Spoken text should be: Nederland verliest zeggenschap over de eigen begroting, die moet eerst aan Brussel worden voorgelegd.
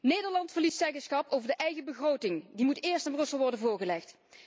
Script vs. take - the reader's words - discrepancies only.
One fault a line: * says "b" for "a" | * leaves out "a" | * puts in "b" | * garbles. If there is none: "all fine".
all fine